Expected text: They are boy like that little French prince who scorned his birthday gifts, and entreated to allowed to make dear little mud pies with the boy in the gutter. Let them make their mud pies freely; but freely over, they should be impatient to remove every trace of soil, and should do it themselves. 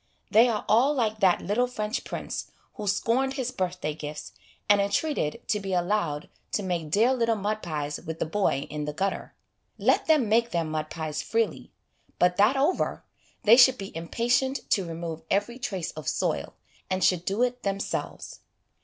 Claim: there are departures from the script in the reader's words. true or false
true